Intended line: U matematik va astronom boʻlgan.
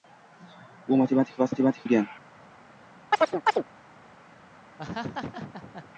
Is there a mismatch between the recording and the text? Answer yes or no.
yes